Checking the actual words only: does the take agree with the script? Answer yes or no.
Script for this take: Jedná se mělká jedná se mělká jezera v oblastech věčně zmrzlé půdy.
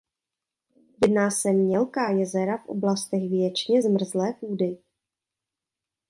no